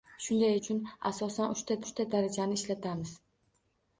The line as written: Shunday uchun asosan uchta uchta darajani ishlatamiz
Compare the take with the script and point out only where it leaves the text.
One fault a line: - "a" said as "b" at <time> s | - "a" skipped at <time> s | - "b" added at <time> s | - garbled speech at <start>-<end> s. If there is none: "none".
none